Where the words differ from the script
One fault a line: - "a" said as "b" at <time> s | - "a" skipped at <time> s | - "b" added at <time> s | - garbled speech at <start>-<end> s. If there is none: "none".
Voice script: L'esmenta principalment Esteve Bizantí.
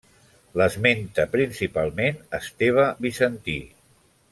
none